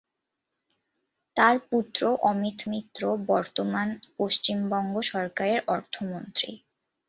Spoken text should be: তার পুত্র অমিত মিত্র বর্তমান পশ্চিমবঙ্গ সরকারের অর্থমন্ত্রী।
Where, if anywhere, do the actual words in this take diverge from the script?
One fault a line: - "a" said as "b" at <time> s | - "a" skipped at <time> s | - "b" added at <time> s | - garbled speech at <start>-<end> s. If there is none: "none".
none